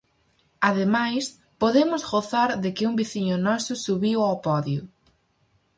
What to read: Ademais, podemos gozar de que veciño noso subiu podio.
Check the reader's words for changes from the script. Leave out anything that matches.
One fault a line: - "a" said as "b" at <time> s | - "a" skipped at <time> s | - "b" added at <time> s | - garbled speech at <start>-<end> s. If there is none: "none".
- "un" added at 2.9 s
- "ao" added at 4.2 s